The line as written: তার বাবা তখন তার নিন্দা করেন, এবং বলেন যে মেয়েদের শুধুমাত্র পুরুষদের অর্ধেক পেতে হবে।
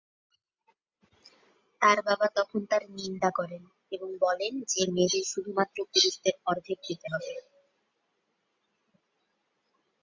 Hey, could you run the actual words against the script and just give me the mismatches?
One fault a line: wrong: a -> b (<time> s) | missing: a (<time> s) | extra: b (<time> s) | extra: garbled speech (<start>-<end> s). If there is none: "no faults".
no faults